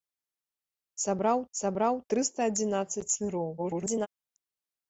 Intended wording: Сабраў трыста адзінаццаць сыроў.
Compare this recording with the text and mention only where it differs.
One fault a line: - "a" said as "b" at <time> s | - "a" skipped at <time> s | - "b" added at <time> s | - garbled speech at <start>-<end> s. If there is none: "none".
- "сабраў" added at 1.6 s
- garbled speech at 3.6-4.1 s